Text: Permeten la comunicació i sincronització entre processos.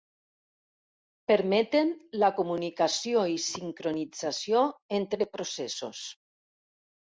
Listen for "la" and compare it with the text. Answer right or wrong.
right